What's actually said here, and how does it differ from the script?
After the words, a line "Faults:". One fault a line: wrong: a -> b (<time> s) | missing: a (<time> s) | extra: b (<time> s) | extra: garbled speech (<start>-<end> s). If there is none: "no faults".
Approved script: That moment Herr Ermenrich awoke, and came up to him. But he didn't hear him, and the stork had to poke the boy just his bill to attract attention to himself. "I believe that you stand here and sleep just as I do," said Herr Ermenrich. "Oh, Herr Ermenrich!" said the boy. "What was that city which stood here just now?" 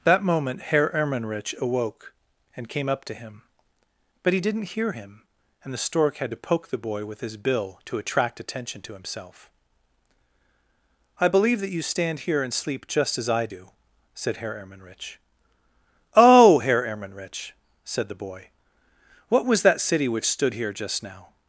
That moment Herr Ermenrich awoke, and came up to him. But he didn't hear him, and the stork had to poke the boy with his bill to attract attention to himself. "I believe that you stand here and sleep just as I do," said Herr Ermenrich. "Oh, Herr Ermenrich!" said the boy. "What was that city which stood here just now?"
Faults:
wrong: just -> with (7.1 s)